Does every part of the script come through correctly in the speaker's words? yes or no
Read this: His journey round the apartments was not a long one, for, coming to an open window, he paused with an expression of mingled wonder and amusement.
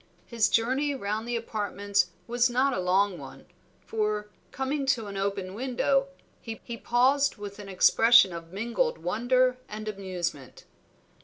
no